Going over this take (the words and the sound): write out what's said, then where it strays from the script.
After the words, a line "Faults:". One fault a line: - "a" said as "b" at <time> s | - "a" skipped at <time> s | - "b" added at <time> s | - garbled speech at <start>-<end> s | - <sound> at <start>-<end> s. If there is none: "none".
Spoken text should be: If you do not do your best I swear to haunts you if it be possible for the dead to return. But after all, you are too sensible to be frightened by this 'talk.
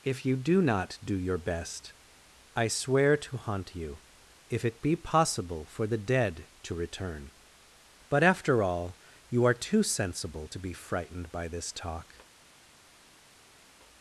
If you do not do your best I swear to haunt you if it be possible for the dead to return. But after all, you are too sensible to be frightened by this 'talk.
Faults:
- "haunts" said as "haunt" at 3.4 s